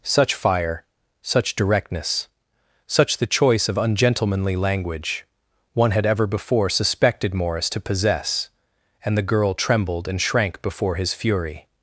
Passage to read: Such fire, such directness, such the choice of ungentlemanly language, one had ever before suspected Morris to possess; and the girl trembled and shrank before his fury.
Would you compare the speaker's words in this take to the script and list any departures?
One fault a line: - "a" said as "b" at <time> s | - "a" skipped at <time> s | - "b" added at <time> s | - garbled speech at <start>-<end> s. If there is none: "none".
none